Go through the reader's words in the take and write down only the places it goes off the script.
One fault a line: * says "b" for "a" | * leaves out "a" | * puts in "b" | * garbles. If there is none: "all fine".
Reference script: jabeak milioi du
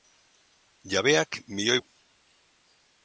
all fine